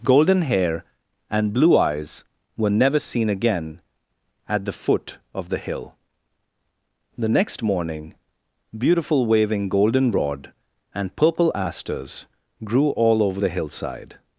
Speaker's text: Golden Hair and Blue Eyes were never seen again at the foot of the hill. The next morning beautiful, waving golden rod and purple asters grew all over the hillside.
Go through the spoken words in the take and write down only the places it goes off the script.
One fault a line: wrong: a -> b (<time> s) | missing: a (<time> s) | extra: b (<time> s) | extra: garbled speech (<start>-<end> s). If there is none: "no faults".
no faults